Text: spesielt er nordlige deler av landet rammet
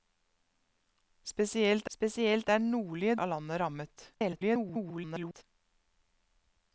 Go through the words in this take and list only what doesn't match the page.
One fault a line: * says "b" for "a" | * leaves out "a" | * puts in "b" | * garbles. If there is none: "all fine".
* puts in "spesielt"
* leaves out "deler"
* garbles